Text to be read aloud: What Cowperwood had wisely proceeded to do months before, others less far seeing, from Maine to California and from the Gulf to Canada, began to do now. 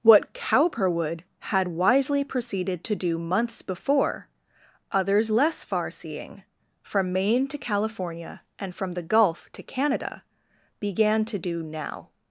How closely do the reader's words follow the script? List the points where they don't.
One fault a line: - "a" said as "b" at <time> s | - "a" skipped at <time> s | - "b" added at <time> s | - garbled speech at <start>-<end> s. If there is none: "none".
none